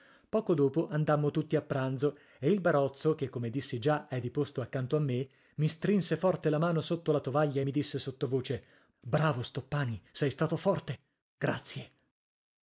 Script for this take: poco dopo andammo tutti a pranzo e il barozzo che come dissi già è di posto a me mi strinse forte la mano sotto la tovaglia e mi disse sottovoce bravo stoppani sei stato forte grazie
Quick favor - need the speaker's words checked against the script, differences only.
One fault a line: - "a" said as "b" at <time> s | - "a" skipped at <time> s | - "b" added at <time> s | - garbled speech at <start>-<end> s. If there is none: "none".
- "accanto" added at 4.6 s